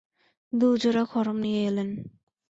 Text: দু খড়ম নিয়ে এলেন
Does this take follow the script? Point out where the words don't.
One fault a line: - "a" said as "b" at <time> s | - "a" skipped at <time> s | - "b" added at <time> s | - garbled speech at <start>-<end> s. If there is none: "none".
- "জোড়া" added at 0.8 s